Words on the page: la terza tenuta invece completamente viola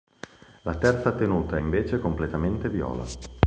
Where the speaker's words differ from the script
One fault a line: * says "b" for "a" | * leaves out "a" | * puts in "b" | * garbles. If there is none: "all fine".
all fine